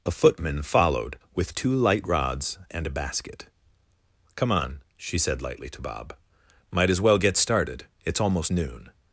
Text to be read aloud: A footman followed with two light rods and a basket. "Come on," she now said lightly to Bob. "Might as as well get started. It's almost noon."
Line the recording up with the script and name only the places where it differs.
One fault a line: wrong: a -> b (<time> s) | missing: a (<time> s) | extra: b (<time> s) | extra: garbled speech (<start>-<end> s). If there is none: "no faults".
missing: now (5.2 s)
missing: as (7.0 s)